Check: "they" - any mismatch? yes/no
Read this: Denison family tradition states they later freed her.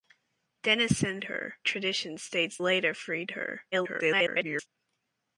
yes